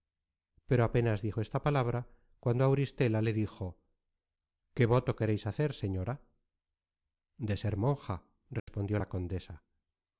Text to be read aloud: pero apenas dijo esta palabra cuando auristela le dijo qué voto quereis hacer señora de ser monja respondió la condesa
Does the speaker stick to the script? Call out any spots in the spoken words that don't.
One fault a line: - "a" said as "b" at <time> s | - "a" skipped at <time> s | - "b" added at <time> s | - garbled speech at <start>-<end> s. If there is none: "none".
none